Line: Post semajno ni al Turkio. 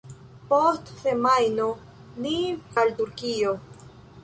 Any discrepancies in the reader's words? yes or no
no